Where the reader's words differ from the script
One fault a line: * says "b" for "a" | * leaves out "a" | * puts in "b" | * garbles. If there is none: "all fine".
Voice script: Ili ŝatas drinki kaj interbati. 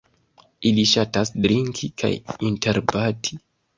all fine